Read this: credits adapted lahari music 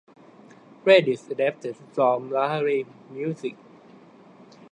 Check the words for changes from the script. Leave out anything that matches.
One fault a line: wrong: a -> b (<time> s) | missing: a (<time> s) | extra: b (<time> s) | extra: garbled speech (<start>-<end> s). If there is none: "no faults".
extra: from (1.9 s)